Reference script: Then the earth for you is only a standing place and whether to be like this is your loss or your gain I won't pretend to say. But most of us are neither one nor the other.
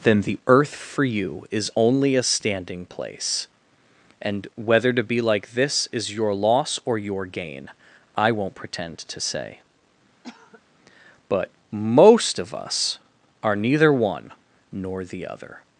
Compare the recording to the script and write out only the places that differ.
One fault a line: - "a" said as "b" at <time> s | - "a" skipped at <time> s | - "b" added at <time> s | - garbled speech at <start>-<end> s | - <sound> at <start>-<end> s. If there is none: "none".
- cough at 10.2-10.6 s